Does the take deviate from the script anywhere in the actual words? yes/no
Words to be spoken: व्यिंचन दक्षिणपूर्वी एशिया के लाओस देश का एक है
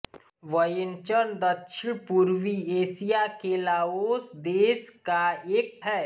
no